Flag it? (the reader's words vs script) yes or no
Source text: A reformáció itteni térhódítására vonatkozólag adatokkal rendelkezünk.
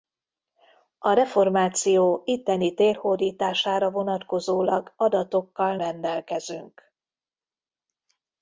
no